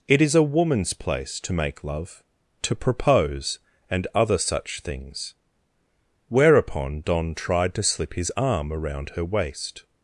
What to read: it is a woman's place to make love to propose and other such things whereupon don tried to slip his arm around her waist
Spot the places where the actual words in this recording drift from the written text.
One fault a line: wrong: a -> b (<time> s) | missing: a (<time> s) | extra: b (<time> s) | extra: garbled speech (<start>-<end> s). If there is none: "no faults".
no faults